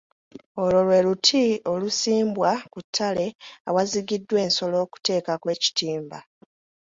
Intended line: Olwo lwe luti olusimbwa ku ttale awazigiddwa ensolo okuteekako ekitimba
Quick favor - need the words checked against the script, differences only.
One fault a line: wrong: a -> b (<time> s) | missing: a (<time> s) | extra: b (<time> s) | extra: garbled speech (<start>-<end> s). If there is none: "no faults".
no faults